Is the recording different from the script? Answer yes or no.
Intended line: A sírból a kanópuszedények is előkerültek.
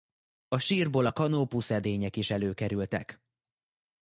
no